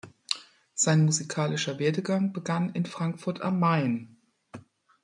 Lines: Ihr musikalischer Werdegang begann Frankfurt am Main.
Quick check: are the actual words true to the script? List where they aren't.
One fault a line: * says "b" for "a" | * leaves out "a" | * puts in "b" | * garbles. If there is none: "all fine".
* says "Sein" for "Ihr"
* puts in "in"